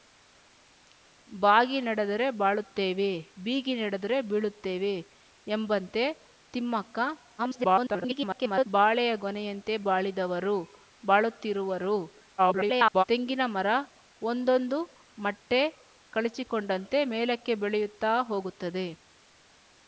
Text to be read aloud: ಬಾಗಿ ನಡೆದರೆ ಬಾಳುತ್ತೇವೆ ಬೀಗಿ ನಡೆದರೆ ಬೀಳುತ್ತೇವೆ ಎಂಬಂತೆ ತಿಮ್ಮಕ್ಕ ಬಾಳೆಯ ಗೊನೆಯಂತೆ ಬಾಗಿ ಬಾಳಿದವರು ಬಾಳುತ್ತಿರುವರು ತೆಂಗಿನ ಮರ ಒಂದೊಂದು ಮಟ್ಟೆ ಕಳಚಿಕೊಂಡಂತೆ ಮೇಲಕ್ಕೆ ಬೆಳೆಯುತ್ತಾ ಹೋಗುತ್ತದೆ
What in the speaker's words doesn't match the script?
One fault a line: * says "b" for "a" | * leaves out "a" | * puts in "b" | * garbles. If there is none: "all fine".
* garbles
* leaves out "ಬಾಗಿ"
* garbles